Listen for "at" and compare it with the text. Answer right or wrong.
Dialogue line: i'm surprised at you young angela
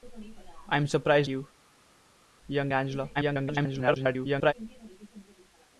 wrong